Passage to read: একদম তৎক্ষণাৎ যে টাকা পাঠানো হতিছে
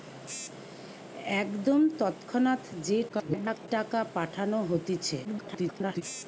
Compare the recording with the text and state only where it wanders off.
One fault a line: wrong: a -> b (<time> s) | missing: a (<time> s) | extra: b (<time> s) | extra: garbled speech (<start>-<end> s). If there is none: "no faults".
extra: garbled speech (3.1-3.7 s)
extra: garbled speech (5.2-6.0 s)